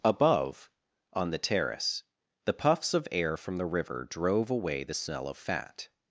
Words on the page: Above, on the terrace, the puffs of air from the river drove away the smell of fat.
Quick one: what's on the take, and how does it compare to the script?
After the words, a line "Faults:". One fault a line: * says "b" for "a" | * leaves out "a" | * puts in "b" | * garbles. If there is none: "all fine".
Above, on the terrace, the puffs of air from the river drove away the smell of fat.
Faults:
all fine